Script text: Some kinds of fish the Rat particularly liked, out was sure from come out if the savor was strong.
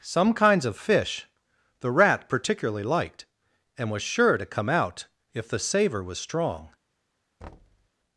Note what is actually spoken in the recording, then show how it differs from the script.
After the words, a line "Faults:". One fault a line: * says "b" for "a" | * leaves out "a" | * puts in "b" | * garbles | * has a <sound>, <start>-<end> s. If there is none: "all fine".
Some kinds of fish the Rat particularly liked, and was sure to come out if the savor was strong.
Faults:
* says "and" for "out"
* says "to" for "from"
* has a thud, 7.4-7.9 s